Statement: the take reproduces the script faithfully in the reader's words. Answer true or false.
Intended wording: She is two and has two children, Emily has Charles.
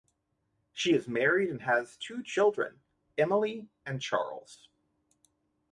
false